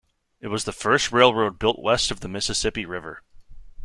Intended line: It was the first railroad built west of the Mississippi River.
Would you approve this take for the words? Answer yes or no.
yes